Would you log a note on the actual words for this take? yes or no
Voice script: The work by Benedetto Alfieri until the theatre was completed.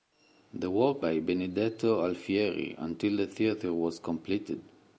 no